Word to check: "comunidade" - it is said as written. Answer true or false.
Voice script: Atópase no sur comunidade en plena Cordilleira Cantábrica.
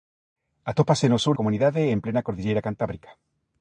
true